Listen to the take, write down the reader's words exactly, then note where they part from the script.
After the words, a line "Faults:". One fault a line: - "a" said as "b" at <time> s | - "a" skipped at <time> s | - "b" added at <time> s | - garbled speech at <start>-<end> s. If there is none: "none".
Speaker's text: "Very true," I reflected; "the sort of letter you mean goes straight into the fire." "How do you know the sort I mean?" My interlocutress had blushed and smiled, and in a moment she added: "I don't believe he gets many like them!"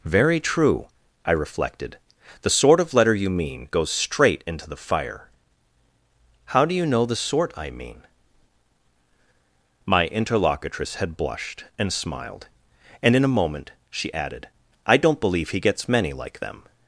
"Very true," I reflected; "the sort of letter you mean goes straight into the fire." "How do you know the sort I mean?" My interlocutress had blushed and smiled, and in a moment she added: "I don't believe he gets many like them!"
Faults:
none